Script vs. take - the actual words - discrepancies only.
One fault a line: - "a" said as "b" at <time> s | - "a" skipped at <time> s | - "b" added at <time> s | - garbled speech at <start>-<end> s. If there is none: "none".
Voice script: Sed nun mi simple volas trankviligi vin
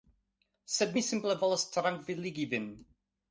- "nun" skipped at 1.0 s